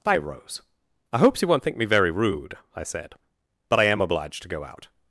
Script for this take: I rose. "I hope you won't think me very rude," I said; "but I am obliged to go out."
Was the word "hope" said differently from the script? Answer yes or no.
yes